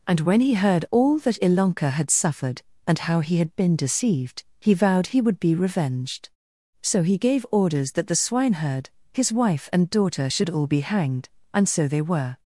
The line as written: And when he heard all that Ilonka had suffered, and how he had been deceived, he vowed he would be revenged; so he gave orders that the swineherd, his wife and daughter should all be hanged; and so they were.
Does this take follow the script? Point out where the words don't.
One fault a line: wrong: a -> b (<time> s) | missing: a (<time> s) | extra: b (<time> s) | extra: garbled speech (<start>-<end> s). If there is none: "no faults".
no faults